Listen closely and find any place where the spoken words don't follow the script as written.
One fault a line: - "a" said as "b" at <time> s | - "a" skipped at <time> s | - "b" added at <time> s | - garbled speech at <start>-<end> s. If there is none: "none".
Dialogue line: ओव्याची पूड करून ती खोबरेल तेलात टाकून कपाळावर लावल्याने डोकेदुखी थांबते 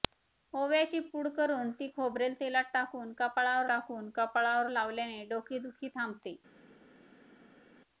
- "टाकून कपाळावर" added at 3.7 s